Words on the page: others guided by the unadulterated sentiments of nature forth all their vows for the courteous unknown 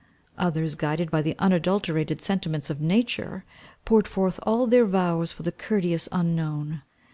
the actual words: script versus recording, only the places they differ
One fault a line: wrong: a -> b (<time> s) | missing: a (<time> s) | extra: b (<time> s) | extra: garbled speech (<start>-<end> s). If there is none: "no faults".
extra: poured (3.8 s)